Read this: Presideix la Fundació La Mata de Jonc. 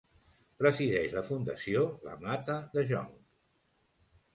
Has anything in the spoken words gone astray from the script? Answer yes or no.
no